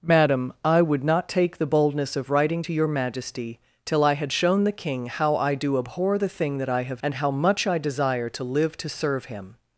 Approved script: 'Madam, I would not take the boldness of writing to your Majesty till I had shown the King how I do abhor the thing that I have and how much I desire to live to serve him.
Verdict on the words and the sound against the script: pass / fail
pass